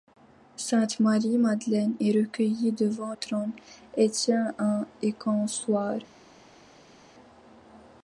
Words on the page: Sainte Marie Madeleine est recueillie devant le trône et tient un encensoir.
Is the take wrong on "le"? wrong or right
wrong